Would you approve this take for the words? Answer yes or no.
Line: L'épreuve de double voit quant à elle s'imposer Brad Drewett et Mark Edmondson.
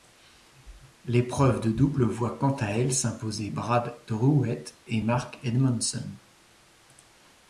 yes